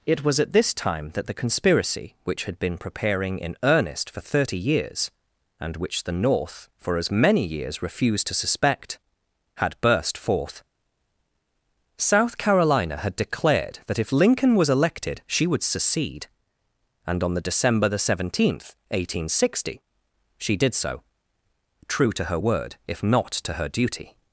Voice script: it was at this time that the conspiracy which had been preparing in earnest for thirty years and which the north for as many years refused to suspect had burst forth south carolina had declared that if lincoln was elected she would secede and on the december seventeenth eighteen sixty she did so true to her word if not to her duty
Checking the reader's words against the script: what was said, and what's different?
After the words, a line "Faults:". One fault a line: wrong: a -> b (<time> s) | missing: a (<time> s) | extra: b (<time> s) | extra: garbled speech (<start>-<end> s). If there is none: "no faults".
it was at this time that the conspiracy which had been preparing in earnest for thirty years and which the north for as many years refused to suspect had burst forth south carolina had declared that if lincoln was elected she would secede and on the december the seventeenth eighteen sixty she did so true to her word if not to her duty
Faults:
extra: the (17.9 s)